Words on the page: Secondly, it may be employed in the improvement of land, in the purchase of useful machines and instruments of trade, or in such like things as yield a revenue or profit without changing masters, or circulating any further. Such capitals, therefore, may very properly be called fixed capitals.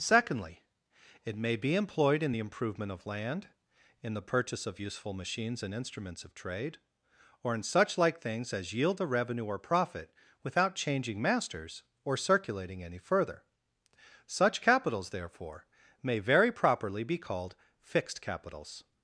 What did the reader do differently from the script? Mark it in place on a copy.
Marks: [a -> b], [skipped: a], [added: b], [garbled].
Secondly, it may be employed in the improvement of land, in the purchase of useful machines and instruments of trade, or in such like things as yield a revenue or profit without changing masters, or circulating any further. Such capitals, therefore, may very properly be called fixed capitals.